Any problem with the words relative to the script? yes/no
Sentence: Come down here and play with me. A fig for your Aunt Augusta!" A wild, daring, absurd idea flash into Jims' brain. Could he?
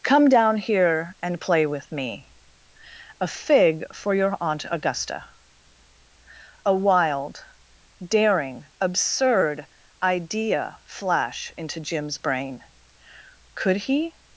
no